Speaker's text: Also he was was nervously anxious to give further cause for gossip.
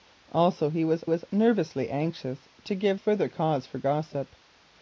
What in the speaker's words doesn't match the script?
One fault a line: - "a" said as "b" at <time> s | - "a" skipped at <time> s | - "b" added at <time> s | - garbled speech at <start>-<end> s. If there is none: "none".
none